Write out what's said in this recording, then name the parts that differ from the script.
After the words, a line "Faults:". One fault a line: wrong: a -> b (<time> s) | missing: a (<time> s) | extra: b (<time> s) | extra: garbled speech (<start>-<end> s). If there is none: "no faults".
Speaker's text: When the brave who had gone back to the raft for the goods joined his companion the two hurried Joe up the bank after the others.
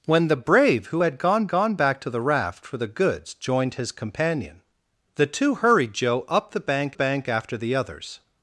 When the brave who had gone gone back to the raft for the goods joined his companion the two hurried Joe up the bank bank after the others.
Faults:
extra: gone (1.5 s)
extra: bank (6.9 s)